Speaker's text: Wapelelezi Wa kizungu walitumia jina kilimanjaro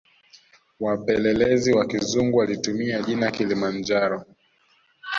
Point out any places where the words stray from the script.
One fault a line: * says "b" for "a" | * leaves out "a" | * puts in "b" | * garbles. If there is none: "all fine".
all fine